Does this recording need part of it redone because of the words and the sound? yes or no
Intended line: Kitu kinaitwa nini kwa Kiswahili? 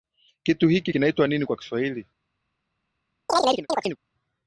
yes